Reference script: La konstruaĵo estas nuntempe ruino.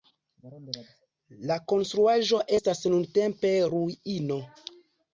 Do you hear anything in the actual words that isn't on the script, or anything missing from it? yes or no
no